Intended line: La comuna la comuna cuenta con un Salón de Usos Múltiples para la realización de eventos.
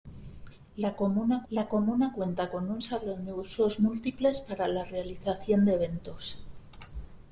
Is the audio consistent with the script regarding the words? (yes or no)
yes